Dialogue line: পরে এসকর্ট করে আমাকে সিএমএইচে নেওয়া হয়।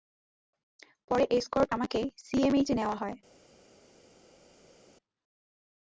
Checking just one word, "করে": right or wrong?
wrong